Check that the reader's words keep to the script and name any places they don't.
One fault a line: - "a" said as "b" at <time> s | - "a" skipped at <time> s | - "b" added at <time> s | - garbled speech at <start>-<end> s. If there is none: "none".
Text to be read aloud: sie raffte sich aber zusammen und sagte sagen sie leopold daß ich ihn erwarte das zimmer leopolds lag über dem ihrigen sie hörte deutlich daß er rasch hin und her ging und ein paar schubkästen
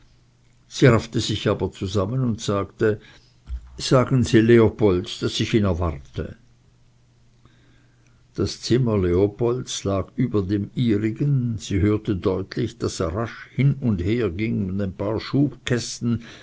none